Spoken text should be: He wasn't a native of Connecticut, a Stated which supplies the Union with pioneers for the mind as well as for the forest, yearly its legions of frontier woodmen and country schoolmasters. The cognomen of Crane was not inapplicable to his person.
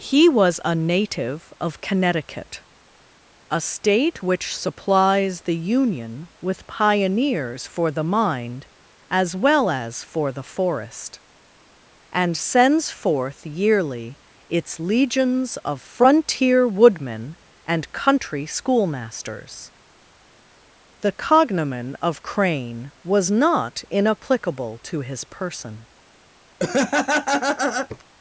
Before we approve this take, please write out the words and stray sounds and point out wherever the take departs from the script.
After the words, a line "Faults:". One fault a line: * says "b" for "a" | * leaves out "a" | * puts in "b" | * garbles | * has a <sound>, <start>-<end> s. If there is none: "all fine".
He was a native of Connecticut, a State which supplies the Union with pioneers for the mind as well as for the forest, and sends forth yearly its legions of frontier woodmen and country schoolmasters. The cognomen of Crane was not inapplicable to his person.
Faults:
* says "was" for "wasn't"
* says "State" for "Stated"
* puts in "and sends forth"
* has a laugh, 26.6-28.0 s